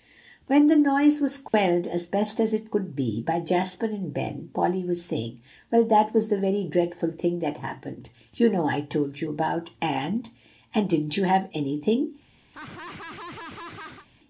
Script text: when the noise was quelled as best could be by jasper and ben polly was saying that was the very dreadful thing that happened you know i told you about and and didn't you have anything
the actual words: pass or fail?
fail